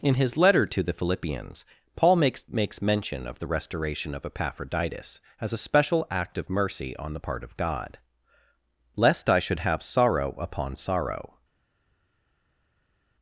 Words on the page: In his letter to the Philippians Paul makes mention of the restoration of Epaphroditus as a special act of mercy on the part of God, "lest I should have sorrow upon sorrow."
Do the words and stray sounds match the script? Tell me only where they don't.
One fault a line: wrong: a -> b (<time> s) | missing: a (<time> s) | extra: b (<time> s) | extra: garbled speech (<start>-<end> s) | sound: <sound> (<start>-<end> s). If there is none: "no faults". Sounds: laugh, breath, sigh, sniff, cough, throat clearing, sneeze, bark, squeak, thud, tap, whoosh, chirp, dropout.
extra: makes (2.5 s)